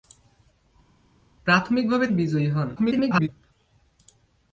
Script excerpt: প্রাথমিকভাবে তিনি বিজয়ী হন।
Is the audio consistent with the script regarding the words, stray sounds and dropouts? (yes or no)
no